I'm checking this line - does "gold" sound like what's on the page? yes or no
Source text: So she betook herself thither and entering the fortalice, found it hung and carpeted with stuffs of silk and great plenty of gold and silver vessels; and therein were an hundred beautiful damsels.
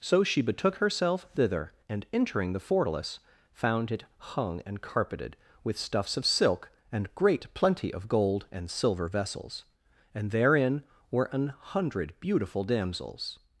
yes